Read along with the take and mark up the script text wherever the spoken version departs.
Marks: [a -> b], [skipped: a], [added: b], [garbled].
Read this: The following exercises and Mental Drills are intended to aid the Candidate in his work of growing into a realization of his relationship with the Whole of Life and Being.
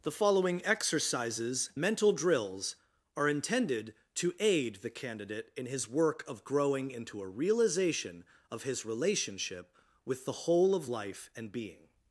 The following exercises [skipped: and] Mental Drills are intended to aid the Candidate in his work of growing into a realization of his relationship with the Whole of Life and Being.